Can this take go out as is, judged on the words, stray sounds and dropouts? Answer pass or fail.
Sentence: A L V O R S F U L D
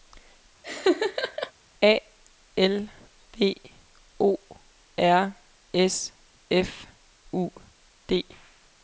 fail